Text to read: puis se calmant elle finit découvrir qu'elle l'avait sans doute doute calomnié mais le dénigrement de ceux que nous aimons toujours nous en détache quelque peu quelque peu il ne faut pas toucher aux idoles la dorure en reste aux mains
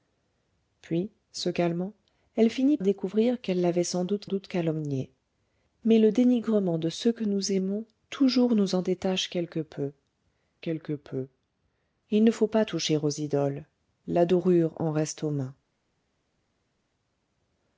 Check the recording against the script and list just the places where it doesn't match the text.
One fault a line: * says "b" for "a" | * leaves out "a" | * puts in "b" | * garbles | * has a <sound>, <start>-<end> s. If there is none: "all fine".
all fine